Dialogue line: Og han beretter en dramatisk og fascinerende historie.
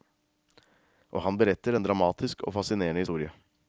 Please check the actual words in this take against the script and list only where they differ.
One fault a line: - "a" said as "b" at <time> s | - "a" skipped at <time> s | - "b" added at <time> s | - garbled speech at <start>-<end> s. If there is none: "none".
none